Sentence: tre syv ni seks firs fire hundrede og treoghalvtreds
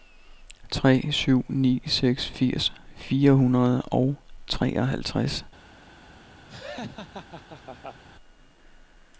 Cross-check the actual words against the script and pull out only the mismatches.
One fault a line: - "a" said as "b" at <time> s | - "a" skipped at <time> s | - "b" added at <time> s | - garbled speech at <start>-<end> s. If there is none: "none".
none